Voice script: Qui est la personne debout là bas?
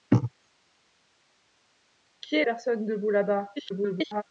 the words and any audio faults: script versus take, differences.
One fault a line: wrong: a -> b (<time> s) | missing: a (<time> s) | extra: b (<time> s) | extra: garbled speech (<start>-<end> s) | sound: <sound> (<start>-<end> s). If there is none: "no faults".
missing: la (2.4 s)
extra: garbled speech (3.6-4.2 s)